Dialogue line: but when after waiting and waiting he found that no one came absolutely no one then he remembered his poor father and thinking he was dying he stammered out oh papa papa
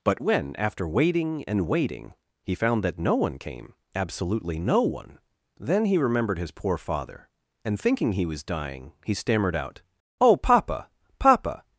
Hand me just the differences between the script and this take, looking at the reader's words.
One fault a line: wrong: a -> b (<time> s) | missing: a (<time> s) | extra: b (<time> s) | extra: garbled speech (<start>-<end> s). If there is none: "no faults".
no faults